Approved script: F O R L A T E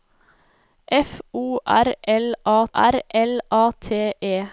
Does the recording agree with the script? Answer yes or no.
no